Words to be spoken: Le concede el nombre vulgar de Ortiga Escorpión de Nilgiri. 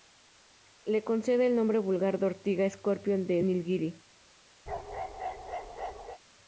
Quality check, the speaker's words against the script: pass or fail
pass